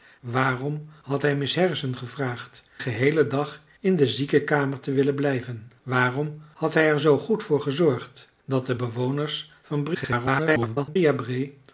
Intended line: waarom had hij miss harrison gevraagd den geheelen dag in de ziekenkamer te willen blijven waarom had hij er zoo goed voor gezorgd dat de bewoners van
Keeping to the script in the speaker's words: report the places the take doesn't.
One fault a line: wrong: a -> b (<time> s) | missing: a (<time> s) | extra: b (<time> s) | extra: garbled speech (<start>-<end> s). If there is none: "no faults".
missing: den (2.6 s)
extra: garbled speech (9.9-11.0 s)